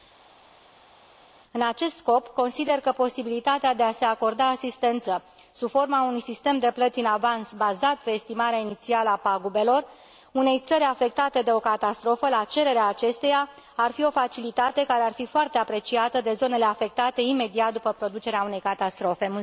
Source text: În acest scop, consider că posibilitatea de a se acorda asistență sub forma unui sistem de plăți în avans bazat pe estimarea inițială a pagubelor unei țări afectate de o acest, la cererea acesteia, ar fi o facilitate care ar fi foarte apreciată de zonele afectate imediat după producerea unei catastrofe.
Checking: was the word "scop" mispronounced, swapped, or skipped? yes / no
no